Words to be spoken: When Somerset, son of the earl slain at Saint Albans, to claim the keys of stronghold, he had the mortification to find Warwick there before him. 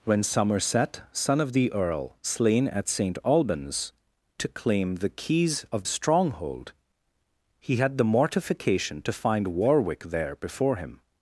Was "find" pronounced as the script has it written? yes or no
yes